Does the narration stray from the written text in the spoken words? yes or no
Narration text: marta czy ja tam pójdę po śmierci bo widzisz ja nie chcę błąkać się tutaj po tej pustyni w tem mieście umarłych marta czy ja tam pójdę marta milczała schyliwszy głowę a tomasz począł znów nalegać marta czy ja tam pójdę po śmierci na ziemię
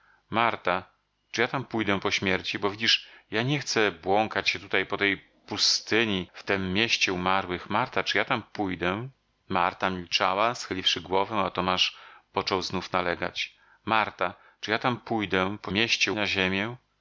yes